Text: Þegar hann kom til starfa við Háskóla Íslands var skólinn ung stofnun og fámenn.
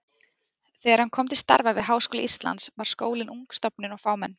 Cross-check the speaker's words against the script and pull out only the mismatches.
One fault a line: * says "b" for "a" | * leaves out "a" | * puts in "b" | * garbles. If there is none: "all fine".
all fine